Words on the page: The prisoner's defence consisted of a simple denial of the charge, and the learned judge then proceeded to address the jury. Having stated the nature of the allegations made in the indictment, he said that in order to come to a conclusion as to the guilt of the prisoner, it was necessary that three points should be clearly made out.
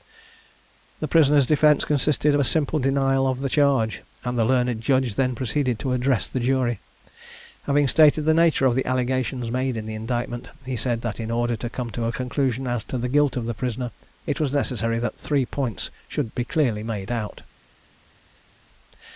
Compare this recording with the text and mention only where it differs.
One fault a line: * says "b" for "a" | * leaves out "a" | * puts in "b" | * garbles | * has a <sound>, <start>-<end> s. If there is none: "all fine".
all fine